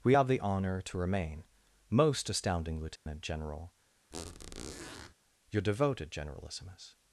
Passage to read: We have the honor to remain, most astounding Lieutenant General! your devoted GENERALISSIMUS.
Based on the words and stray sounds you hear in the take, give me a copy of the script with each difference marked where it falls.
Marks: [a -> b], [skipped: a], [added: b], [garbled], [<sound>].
We have the honor to remain, most astounding Lieutenant [dropout] General! [squeak] your devoted GENERALISSIMUS.